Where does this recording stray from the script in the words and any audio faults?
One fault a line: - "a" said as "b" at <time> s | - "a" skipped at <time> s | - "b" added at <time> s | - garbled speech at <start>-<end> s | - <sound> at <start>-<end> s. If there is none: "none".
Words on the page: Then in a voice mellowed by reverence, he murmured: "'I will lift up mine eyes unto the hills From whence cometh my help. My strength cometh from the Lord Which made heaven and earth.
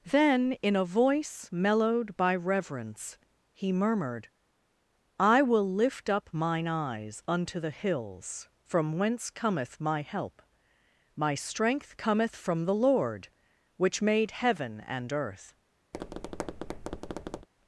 - tap at 15.9-17.5 s